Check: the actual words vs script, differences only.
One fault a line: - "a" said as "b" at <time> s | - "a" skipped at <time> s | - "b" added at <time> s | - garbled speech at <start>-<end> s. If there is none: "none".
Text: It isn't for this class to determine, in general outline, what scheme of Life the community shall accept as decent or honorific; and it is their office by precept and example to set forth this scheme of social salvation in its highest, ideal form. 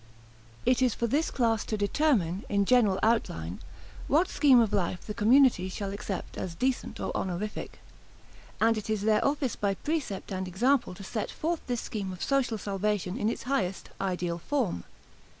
- "isn't" said as "is" at 0.8 s